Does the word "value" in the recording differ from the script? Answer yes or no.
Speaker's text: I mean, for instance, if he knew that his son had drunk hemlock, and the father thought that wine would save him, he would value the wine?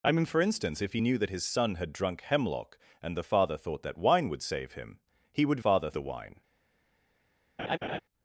yes